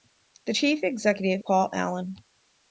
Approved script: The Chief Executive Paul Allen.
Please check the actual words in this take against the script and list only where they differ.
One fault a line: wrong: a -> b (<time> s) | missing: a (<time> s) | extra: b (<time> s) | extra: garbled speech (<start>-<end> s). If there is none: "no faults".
no faults